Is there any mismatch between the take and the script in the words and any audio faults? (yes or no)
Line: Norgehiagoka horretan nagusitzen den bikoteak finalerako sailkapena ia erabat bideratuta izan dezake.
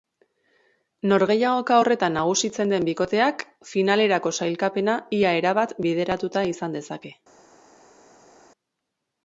no